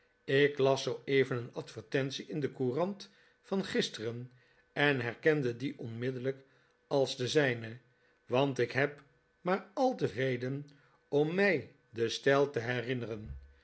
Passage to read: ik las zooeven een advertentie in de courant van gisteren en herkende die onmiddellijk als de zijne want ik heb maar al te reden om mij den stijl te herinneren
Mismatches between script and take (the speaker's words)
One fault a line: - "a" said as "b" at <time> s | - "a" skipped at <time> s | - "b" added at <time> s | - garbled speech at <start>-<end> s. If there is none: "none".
none